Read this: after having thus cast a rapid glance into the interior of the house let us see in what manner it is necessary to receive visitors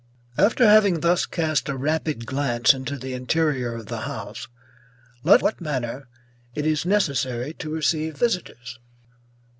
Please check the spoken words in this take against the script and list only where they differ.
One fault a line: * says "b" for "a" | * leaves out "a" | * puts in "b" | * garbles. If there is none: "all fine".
* leaves out "us see in"